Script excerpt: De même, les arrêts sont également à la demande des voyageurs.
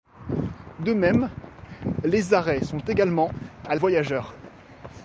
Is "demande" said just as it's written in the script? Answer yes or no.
no